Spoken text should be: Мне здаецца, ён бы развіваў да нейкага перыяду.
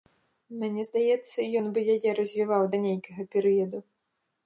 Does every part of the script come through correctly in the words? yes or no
no